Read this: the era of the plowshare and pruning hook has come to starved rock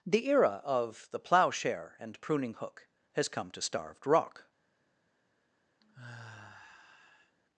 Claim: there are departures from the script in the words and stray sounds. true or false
true